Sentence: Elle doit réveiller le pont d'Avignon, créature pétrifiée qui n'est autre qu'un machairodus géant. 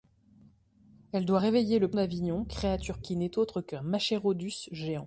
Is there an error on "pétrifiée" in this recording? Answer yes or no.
yes